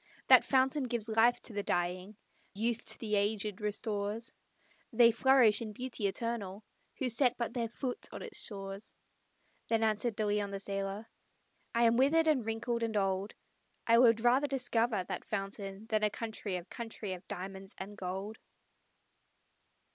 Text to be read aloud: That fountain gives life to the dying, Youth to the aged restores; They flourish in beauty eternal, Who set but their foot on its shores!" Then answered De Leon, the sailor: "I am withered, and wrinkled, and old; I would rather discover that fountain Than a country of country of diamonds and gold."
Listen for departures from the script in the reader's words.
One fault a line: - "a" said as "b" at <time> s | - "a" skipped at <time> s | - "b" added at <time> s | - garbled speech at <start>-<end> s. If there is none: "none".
none